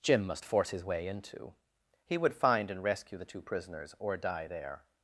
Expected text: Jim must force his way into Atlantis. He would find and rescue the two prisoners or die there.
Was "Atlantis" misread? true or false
true